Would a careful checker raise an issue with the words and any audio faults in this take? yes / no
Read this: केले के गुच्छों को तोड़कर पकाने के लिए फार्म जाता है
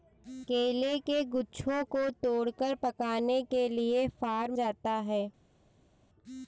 no